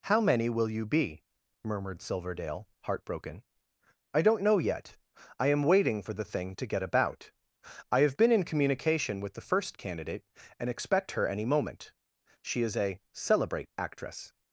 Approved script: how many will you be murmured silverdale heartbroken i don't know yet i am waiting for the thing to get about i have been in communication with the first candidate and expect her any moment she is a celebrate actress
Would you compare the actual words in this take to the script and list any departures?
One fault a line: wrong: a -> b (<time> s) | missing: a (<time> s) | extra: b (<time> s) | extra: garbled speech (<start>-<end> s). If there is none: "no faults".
no faults